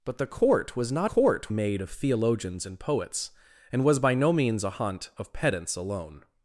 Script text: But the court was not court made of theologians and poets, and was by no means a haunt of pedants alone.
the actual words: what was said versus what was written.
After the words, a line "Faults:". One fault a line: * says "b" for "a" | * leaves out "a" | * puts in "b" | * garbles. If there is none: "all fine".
But the court was not court made of theologians and poets, and was by no means a haunt of pedants alone.
Faults:
all fine